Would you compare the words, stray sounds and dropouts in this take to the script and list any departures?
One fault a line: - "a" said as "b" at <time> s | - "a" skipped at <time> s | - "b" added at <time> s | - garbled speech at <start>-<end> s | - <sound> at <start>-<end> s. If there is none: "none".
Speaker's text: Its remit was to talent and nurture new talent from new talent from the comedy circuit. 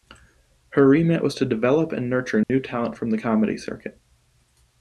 - "Its" said as "Her" at 0.7 s
- "talent" said as "develop" at 1.4 s
- dropout at 2.4-2.5 s
- "new talent from" skipped at 3.1 s